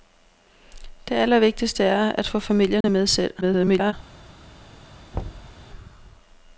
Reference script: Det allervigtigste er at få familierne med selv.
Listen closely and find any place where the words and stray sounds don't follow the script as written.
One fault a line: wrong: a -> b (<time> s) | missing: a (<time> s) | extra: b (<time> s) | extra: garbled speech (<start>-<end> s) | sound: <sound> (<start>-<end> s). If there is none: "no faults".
sound: dropout (2.8-2.8 s)
extra: garbled speech (3.4-3.9 s)
sound: thud (5.1-5.6 s)